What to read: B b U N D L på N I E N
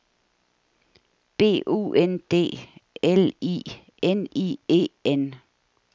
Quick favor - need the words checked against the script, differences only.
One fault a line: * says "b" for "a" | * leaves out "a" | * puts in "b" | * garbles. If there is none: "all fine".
* leaves out "b"
* says "I" for "på"